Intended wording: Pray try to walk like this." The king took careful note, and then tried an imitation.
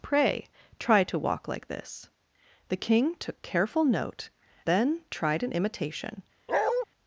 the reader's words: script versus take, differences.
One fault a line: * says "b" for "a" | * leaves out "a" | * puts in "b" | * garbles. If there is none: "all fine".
* leaves out "and"